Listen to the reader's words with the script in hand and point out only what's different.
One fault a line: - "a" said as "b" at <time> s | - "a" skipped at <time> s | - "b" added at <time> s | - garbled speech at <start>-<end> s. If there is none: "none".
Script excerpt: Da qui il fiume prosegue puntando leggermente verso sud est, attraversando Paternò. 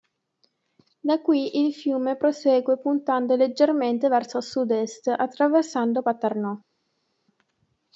none